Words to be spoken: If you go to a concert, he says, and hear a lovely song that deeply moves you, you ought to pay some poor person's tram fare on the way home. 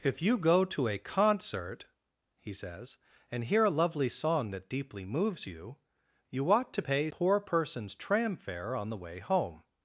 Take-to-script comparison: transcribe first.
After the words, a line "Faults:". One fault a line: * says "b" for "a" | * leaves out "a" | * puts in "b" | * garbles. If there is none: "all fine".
If you go to a concert, he says, and hear a lovely song that deeply moves you, you ought to pay poor person's tram fare on the way home.
Faults:
* leaves out "some"